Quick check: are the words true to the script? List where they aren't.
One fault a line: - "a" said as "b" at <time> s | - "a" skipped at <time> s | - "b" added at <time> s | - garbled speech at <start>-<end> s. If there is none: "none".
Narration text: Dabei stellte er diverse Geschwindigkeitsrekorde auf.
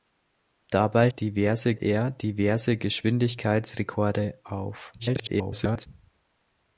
- "stellte" said as "diverse" at 1.1 s
- garbled speech at 5.0-5.9 s